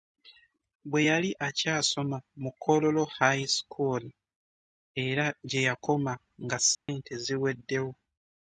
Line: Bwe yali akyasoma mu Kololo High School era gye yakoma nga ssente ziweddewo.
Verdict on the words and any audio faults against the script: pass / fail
fail